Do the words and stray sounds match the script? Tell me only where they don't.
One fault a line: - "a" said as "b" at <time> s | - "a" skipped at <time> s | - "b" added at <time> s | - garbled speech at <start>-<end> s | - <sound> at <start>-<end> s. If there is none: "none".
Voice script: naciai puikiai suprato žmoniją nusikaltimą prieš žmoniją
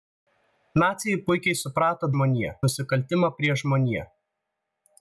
none